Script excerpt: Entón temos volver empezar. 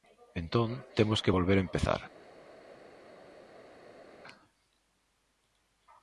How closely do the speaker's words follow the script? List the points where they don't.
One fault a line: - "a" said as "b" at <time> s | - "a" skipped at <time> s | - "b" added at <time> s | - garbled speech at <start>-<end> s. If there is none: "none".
- "que" added at 1.2 s